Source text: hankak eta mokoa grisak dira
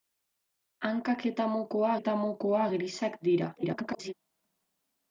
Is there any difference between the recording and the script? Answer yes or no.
yes